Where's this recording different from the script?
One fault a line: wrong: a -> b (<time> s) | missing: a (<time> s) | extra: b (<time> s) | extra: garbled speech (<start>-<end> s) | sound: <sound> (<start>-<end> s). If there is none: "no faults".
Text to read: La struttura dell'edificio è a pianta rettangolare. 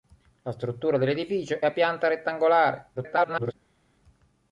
missing: è (1.6 s)
extra: garbled speech (3.0-3.5 s)